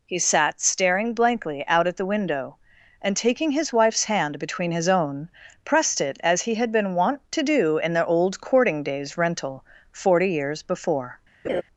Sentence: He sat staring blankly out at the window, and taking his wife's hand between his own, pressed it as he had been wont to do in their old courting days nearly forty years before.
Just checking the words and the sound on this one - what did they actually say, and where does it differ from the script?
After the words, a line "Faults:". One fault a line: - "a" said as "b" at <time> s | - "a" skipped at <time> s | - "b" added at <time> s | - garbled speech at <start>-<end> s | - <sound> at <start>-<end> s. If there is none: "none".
He sat staring blankly out at the window, and taking his wife's hand between his own, pressed it as he had been wont to do in their old courting days rental forty years before.
Faults:
- "nearly" said as "rental" at 9.2 s
- laugh at 11.4-11.6 s